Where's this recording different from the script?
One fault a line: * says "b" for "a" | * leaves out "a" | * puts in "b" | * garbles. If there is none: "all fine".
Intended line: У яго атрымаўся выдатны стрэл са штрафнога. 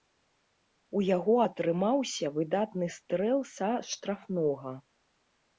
all fine